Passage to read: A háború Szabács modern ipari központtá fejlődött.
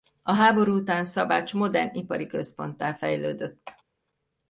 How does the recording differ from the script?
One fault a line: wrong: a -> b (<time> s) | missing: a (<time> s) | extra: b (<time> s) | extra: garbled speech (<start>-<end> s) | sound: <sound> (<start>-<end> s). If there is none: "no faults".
extra: után (0.7 s)